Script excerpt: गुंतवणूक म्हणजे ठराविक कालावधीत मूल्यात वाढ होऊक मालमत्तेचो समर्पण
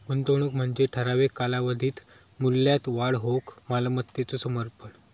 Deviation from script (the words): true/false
false